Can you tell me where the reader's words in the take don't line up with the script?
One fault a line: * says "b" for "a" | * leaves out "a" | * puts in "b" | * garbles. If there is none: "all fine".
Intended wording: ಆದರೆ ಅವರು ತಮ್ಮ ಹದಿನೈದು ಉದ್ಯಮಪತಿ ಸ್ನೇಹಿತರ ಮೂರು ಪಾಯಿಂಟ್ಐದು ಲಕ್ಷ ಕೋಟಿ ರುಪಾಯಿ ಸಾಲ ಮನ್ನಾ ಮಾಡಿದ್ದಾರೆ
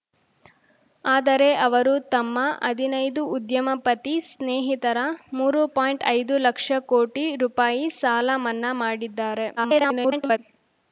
* garbles